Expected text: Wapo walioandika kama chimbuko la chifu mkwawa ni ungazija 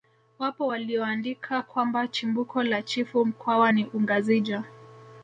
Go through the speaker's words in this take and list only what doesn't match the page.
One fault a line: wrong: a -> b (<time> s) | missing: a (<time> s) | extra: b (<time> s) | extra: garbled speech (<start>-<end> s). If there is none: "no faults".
wrong: kama -> kwamba (1.6 s)